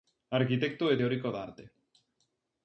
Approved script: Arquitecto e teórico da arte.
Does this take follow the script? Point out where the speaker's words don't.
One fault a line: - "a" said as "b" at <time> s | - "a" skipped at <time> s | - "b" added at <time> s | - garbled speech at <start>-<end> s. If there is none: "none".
none